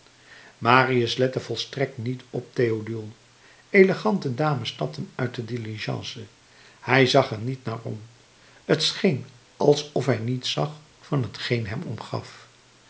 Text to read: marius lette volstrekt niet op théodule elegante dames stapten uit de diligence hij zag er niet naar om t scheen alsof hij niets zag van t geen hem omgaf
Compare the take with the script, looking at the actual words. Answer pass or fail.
pass